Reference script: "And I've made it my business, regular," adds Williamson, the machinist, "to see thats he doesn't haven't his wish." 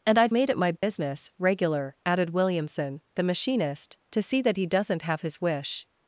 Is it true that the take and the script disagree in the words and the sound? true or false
true